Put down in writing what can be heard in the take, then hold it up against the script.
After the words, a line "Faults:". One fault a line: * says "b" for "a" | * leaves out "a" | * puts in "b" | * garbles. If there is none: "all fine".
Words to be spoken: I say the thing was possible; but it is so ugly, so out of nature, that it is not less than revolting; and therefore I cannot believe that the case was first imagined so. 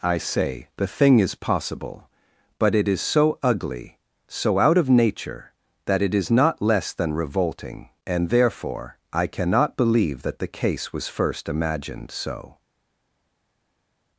I say the thing is possible; but it is so ugly, so out of nature, that it is not less than revolting; and therefore I cannot believe that the case was first imagined so.
Faults:
* says "is" for "was"